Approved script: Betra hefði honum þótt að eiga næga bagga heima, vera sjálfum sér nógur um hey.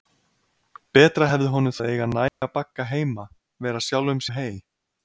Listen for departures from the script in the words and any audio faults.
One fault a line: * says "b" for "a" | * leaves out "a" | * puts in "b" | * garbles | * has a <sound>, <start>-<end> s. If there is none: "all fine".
* leaves out "þótt"
* has a dropout, 2.3-2.4 s
* leaves out "sér nógur"